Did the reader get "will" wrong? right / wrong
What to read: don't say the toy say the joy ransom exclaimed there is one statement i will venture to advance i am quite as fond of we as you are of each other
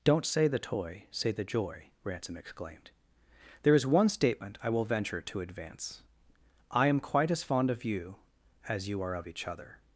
right